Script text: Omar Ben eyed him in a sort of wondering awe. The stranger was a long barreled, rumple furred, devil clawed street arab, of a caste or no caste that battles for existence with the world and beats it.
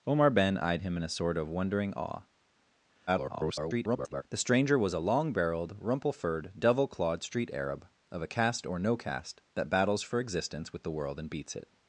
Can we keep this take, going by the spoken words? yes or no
no